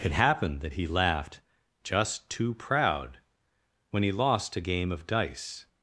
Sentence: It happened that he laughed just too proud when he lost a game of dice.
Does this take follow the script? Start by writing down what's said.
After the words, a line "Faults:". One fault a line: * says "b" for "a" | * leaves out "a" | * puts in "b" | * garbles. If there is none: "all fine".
It happened that he laughed just too proud when he lost a game of dice.
Faults:
all fine